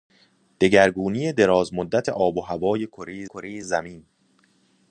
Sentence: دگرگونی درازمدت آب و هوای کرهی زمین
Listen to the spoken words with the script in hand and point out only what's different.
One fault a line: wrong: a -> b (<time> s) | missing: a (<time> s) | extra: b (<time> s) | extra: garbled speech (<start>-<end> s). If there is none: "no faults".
extra: کرهی (3.2 s)